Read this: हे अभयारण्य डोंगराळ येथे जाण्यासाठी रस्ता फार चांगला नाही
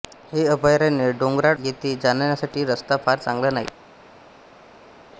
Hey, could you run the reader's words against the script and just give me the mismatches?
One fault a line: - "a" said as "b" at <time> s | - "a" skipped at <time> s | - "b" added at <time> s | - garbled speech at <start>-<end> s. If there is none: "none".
none